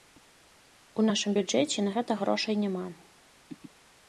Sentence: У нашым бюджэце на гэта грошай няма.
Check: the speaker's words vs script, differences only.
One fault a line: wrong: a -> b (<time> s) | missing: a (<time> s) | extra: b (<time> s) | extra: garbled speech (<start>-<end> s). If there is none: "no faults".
no faults